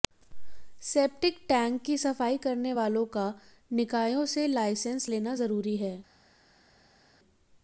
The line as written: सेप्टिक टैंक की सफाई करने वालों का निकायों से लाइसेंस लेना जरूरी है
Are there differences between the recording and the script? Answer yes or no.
no